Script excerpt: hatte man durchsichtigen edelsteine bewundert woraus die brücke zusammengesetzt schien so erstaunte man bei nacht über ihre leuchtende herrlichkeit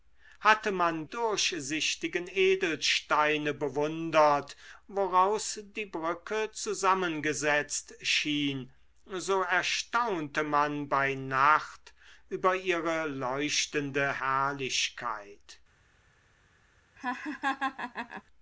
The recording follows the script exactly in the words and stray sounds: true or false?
false